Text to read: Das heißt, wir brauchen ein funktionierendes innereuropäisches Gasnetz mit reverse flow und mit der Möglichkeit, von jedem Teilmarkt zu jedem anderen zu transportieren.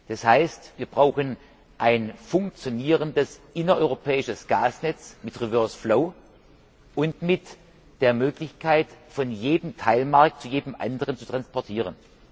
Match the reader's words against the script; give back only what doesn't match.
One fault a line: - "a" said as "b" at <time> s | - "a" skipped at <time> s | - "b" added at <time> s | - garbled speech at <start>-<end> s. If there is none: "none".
none